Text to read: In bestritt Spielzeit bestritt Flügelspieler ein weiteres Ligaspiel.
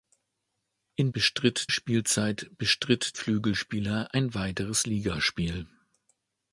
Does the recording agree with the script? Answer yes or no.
yes